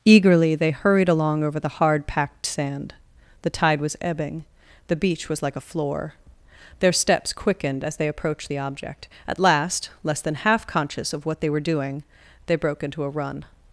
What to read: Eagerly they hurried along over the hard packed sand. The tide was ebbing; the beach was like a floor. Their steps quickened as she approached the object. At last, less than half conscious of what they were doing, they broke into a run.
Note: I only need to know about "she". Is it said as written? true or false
false